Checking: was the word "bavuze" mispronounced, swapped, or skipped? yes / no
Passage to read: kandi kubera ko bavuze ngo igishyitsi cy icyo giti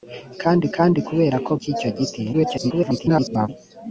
yes